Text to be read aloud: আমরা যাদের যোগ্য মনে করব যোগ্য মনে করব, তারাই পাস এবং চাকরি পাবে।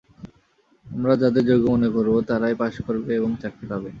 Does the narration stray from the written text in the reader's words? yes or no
yes